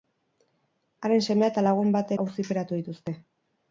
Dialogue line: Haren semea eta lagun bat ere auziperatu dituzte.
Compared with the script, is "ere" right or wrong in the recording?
wrong